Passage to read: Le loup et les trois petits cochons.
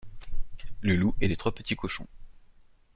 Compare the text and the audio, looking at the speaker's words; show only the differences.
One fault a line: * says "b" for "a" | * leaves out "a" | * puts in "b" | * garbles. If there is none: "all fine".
all fine